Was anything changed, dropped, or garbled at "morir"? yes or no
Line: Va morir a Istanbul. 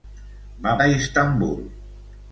yes